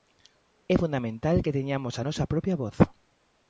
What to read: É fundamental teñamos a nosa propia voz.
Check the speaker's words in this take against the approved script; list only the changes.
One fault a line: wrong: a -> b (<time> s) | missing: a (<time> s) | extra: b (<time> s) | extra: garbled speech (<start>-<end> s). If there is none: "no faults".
extra: que (1.4 s)